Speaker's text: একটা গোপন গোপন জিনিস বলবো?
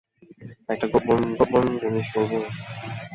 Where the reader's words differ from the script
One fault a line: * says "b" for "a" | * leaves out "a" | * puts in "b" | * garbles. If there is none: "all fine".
all fine